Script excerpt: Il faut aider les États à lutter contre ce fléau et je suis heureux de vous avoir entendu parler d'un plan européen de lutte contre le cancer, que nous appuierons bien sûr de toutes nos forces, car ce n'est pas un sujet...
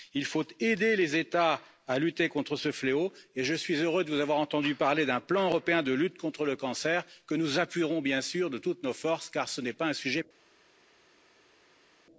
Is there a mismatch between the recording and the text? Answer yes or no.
no